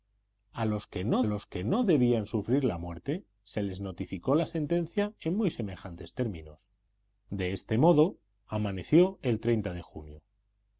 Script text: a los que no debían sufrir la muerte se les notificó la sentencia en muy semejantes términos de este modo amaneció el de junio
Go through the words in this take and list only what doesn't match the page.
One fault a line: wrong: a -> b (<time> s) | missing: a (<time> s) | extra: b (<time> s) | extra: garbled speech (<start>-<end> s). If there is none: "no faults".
extra: los que no (1.2 s)